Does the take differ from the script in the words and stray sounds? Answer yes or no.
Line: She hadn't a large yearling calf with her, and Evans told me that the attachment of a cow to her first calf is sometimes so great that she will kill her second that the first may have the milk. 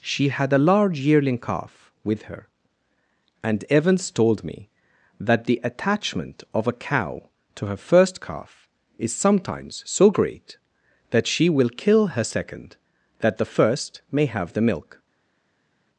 yes